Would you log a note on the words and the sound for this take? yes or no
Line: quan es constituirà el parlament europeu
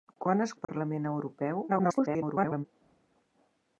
yes